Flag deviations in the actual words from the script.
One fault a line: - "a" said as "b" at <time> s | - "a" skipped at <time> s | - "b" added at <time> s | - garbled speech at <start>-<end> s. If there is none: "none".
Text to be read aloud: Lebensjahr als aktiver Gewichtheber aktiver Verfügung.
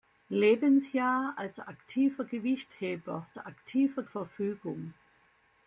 none